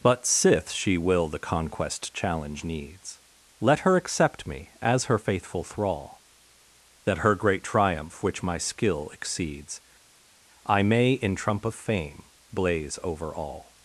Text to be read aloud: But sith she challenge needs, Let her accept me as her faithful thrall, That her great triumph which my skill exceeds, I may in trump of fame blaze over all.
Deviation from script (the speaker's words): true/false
true